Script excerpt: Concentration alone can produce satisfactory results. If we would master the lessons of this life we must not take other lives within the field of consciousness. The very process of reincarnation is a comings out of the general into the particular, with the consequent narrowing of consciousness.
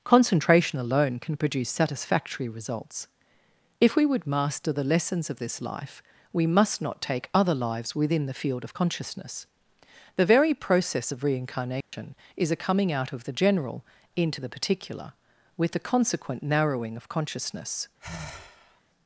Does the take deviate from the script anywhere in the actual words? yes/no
yes